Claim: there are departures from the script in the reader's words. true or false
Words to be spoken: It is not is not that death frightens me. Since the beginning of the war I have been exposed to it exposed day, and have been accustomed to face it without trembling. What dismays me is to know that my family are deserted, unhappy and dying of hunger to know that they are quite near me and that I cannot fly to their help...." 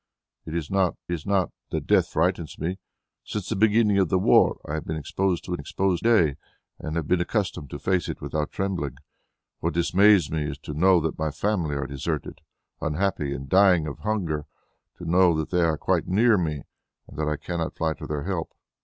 false